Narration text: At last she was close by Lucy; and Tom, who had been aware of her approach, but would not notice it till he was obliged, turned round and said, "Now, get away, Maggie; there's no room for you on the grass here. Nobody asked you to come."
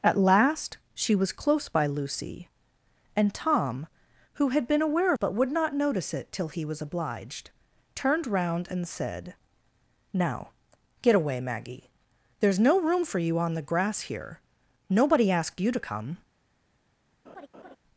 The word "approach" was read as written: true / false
false